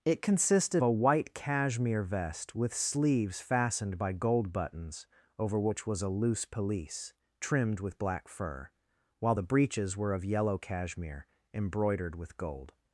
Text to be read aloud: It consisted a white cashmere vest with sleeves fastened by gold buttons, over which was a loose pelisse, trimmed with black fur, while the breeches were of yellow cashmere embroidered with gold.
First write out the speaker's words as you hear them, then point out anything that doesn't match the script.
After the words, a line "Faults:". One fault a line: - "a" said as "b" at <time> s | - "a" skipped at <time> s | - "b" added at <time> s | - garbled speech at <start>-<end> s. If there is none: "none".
It consisted a white cashmere vest with sleeves fastened by gold buttons, over which was a loose pelisse, trimmed with black fur, while the breeches were of yellow cashmere embroidered with gold.
Faults:
none